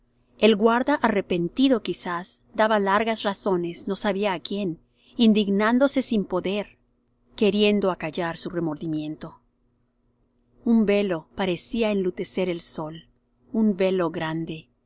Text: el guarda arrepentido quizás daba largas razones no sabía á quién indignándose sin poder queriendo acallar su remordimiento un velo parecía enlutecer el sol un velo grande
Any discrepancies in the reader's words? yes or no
no